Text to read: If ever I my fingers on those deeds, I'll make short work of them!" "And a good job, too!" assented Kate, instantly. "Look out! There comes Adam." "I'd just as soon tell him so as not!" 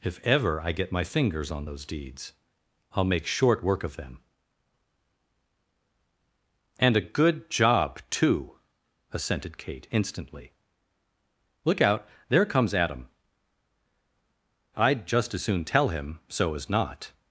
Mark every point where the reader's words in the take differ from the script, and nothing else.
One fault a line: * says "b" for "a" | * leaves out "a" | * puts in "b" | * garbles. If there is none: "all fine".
* puts in "get"